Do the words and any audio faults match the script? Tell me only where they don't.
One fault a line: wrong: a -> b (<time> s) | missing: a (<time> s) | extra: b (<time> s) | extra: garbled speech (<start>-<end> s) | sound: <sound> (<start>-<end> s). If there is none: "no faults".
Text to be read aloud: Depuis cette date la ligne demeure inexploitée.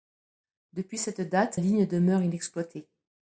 missing: la (1.6 s)